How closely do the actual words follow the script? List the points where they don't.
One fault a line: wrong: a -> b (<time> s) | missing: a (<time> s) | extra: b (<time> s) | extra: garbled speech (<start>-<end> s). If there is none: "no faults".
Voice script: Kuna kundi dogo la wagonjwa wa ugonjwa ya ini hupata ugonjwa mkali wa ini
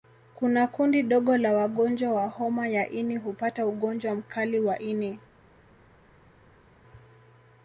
wrong: ugonjwa -> homa (2.3 s)